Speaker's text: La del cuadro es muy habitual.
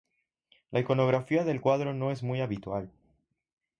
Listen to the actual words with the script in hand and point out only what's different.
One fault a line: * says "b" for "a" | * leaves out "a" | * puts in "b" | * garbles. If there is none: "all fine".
* puts in "iconografía"
* puts in "no"